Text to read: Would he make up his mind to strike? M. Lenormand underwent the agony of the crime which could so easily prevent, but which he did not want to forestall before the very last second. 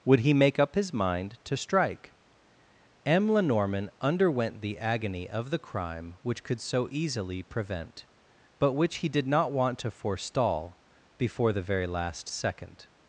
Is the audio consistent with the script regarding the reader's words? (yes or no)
yes